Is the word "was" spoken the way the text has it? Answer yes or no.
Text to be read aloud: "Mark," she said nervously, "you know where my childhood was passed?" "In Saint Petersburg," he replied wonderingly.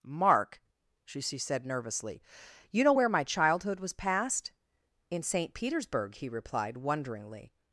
yes